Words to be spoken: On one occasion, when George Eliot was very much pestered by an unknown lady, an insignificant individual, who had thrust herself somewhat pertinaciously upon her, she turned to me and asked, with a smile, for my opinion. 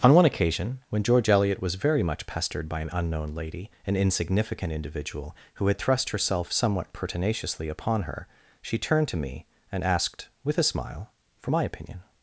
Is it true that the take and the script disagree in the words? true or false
false